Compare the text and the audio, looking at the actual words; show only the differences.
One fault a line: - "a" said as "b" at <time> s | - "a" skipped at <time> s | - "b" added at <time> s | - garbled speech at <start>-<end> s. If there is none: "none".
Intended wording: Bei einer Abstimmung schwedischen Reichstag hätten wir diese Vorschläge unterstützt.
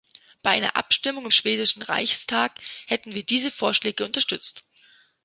none